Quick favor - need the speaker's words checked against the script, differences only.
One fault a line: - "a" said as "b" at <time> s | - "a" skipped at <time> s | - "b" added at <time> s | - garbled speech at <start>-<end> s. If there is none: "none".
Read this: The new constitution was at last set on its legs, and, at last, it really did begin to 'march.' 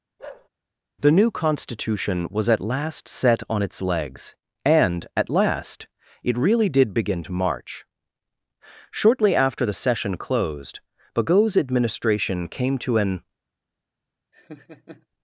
- "Shortly after the session closed Bagot's administration came to an" added at 8.9 s